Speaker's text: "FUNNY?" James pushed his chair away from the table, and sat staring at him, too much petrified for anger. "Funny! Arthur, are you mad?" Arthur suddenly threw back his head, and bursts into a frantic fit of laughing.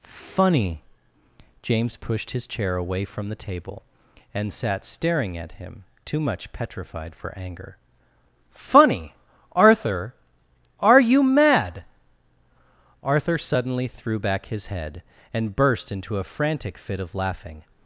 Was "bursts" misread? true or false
true